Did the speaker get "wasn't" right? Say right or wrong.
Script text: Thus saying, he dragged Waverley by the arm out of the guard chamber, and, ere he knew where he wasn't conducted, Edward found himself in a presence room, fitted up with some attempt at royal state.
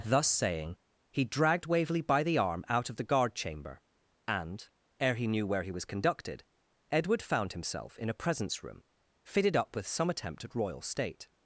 wrong